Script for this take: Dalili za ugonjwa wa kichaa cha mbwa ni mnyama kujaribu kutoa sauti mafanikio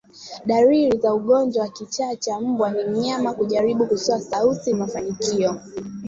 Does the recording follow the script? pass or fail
pass